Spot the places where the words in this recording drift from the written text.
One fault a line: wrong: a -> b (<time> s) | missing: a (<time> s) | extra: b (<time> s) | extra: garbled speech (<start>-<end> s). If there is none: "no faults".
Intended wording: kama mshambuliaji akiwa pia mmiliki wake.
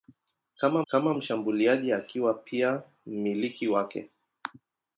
extra: kama (0.9 s)